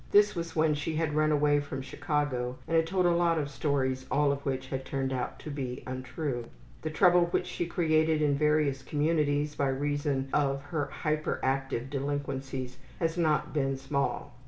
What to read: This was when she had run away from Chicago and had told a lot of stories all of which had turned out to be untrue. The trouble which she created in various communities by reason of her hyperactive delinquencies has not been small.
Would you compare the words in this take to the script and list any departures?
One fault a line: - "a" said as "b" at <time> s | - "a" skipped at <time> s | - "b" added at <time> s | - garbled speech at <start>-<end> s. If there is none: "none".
none